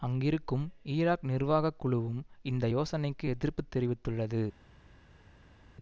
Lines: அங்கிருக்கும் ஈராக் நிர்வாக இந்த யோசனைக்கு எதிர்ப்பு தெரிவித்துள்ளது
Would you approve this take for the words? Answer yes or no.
no